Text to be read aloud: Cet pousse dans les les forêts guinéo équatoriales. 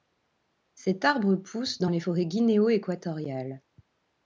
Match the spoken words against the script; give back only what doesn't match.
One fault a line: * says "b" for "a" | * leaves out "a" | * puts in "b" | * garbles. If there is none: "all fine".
* puts in "arbre"
* leaves out "les"